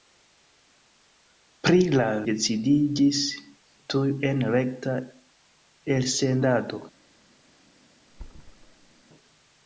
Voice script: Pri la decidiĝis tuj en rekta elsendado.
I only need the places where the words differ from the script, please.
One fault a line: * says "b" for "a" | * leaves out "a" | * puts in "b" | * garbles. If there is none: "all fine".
all fine